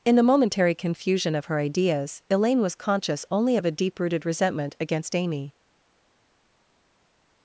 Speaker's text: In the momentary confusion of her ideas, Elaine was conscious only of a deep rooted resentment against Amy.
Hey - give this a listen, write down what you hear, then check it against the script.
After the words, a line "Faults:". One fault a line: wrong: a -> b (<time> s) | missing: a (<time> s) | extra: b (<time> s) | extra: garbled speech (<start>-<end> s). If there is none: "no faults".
In the momentary confusion of her ideas, Elaine was conscious only of a deep rooted resentment against Amy.
Faults:
no faults